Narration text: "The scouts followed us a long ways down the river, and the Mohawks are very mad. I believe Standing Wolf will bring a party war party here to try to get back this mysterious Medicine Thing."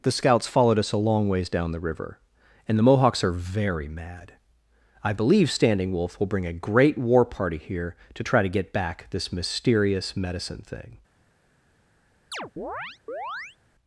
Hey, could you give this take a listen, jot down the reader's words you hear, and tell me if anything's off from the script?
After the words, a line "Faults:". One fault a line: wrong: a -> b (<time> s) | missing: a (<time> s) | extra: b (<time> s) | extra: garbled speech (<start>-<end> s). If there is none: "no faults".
"The scouts followed us a long ways down the river, and the Mohawks are very mad. I believe Standing Wolf will bring a great war party here to try to get back this mysterious Medicine Thing."
Faults:
wrong: party -> great (6.5 s)